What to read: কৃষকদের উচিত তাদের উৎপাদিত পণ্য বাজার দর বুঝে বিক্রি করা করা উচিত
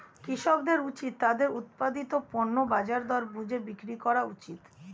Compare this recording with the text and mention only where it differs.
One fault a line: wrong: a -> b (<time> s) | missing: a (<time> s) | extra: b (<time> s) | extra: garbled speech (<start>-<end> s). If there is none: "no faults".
missing: করা (4.2 s)